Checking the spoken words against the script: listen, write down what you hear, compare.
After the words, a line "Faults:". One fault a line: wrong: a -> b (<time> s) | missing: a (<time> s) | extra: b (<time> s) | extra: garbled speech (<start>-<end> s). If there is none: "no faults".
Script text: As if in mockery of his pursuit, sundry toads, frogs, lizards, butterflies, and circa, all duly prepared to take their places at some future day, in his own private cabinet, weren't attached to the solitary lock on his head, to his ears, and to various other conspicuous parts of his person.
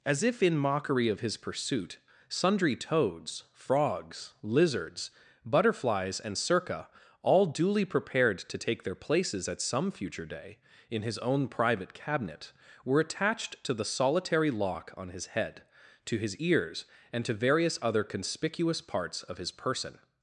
As if in mockery of his pursuit, sundry toads, frogs, lizards, butterflies, and circa, all duly prepared to take their places at some future day, in his own private cabinet, were attached to the solitary lock on his head, to his ears, and to various other conspicuous parts of his person.
Faults:
wrong: weren't -> were (12.8 s)